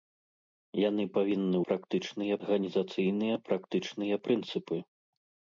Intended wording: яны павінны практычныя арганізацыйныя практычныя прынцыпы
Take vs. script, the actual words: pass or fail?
pass